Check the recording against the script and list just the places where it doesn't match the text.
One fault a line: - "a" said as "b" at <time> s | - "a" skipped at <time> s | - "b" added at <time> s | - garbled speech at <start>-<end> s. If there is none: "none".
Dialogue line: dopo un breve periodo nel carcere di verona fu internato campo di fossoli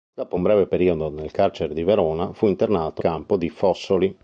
none